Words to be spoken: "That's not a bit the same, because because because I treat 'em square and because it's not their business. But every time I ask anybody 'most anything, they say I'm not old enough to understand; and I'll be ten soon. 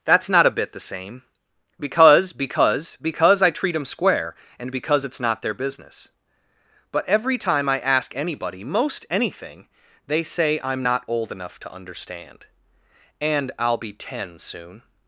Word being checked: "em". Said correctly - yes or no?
yes